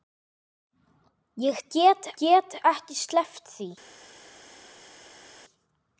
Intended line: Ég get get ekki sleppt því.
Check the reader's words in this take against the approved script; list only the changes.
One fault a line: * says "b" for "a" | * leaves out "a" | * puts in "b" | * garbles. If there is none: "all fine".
all fine